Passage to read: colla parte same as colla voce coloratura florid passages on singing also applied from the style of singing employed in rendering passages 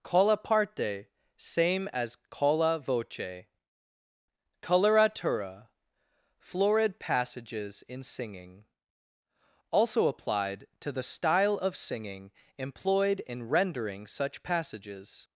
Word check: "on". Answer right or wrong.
wrong